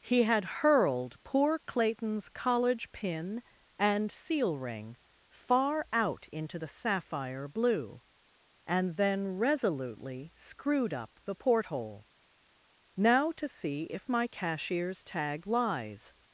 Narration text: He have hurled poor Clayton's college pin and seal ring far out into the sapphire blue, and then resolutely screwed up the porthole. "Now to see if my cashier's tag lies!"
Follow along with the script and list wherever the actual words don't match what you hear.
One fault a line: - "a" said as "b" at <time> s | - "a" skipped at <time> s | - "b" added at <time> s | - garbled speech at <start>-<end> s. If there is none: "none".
- "have" said as "had" at 0.2 s